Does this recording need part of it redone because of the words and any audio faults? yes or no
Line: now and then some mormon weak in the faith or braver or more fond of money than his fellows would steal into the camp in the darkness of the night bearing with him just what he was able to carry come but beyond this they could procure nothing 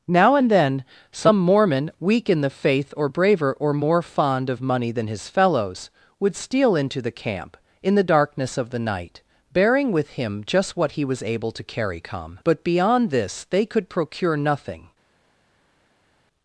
no